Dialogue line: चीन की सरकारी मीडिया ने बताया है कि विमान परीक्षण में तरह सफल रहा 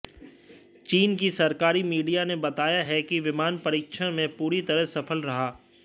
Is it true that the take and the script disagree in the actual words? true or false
true